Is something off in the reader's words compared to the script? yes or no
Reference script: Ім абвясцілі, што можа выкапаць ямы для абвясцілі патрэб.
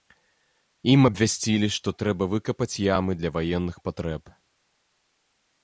yes